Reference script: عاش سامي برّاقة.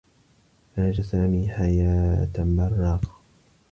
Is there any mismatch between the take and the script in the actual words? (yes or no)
yes